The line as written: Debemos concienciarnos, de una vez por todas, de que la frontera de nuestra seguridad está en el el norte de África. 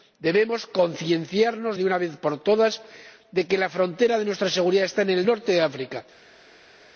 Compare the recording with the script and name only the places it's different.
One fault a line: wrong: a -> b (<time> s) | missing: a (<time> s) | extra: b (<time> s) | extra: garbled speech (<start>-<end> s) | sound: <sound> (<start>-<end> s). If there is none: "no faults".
missing: el (5.3 s)